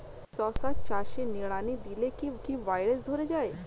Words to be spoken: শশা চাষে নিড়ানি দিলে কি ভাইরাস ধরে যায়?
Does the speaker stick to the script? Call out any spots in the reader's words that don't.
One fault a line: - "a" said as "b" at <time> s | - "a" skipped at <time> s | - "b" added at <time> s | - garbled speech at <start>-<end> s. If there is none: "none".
- "কি" added at 2.4 s